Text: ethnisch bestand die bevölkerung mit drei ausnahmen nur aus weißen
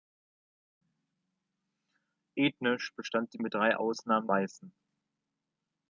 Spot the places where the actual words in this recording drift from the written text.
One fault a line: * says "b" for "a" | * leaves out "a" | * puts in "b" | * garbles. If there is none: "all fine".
* leaves out "bevölkerung"
* leaves out "nur aus"